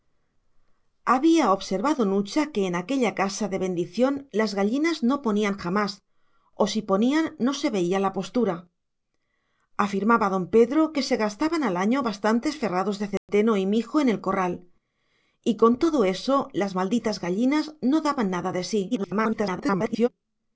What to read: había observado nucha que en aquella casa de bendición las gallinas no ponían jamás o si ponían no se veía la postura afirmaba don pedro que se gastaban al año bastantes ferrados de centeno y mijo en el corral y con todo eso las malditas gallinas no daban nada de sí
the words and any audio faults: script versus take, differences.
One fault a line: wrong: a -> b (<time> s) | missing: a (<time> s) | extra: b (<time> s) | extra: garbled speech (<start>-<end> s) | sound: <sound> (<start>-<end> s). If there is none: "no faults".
sound: dropout (13.2-13.3 s)
extra: garbled speech (18.9-20.1 s)